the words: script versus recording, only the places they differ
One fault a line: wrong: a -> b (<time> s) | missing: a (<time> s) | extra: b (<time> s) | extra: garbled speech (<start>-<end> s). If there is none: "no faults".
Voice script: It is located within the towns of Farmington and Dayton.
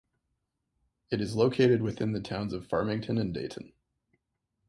no faults